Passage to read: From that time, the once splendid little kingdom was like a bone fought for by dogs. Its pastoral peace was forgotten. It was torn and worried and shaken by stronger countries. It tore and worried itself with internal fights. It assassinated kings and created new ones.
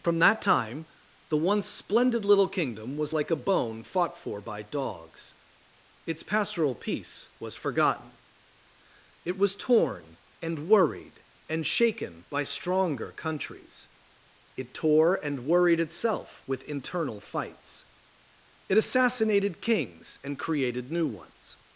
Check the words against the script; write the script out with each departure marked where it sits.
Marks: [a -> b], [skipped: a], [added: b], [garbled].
From that time, the once splendid little kingdom was like a bone fought for by dogs. Its pastoral peace was forgotten. It was torn and worried and shaken by stronger countries. It tore and worried itself with internal fights. It assassinated kings and created new ones.